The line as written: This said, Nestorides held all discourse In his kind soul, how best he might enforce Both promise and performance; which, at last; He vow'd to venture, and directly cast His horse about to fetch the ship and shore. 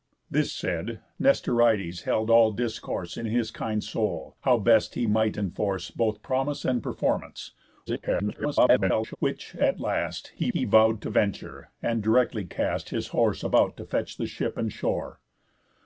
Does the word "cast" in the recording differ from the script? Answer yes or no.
no